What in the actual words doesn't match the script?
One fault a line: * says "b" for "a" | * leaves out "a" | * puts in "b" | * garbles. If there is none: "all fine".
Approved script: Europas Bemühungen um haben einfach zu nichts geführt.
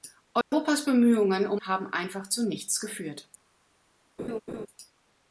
all fine